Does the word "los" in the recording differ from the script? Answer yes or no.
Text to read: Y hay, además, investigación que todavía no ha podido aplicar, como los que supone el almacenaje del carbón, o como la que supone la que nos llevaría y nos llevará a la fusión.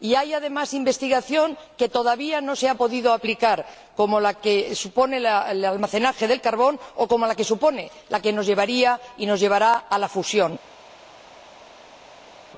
yes